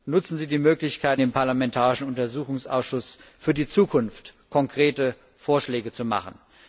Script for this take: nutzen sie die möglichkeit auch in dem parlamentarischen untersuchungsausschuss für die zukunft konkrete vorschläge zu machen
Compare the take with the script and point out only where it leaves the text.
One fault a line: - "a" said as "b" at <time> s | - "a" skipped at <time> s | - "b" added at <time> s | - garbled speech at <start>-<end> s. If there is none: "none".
- "auch in" skipped at 1.2 s